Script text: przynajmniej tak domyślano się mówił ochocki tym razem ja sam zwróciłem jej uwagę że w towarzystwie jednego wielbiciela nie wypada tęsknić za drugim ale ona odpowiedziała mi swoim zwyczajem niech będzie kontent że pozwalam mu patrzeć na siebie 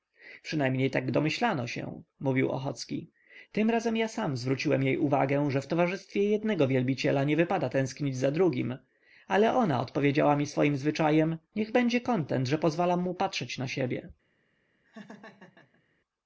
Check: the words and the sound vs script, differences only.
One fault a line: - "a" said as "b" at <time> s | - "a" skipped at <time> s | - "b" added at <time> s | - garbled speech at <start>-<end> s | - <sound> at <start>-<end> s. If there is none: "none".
- laugh at 14.8-15.8 s